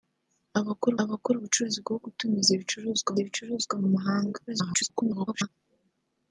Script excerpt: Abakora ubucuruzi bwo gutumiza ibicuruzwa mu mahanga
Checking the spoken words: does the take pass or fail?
fail